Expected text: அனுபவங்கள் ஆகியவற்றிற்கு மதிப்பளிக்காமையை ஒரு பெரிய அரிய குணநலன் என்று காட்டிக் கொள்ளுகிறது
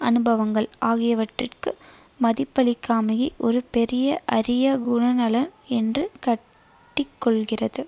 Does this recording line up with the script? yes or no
yes